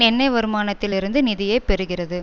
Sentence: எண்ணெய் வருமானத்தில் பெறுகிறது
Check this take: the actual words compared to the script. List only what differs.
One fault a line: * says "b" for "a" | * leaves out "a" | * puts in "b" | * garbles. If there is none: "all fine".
* puts in "இருந்து நிதியை"